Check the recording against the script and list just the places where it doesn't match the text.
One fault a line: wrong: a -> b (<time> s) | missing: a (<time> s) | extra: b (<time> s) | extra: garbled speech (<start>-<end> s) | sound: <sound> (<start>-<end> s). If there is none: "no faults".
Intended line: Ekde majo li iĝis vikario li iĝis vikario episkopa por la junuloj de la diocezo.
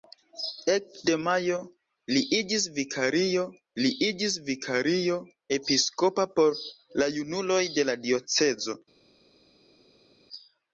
no faults